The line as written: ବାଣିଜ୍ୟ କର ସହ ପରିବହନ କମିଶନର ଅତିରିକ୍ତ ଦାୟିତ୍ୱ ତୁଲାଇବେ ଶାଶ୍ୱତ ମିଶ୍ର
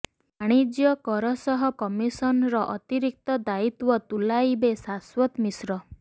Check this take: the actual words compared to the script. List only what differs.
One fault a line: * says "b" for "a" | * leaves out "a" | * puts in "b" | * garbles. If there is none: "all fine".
* leaves out "ପରିବହନ"